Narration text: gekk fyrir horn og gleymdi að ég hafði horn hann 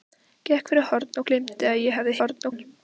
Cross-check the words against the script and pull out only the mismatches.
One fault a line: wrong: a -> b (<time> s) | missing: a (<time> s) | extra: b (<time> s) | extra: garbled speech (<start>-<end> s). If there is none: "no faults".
no faults